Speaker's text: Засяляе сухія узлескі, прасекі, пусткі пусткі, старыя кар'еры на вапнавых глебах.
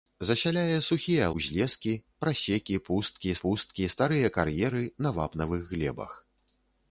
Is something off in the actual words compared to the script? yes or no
no